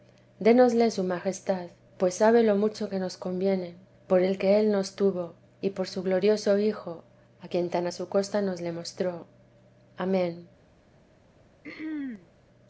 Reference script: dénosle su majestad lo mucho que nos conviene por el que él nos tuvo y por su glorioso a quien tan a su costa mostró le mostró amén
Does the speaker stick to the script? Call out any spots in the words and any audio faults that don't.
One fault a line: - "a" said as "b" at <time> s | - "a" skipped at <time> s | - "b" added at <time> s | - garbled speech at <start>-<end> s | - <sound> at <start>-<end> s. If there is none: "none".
- "pues sabe" added at 2.0 s
- "hijo" added at 6.6 s
- "mostró" said as "nos" at 8.4 s
- throat clearing at 11.6-12.3 s